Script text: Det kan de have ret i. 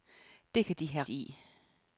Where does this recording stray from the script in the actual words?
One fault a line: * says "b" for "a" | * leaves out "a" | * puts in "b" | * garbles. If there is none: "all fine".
* leaves out "ret"